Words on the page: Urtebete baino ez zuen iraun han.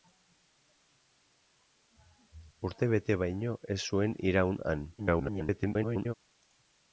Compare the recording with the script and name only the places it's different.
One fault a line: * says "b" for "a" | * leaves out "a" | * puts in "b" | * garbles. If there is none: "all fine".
* garbles